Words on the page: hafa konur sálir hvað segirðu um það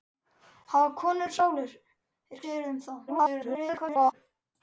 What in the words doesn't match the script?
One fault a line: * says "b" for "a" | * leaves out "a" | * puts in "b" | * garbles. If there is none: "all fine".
* leaves out "hvað"
* garbles